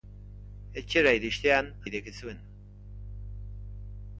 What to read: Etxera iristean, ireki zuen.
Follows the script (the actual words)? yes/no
yes